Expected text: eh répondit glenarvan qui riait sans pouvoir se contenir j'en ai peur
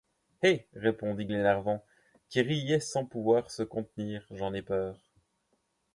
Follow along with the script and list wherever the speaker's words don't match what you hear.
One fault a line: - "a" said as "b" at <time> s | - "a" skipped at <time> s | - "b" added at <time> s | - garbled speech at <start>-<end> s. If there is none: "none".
none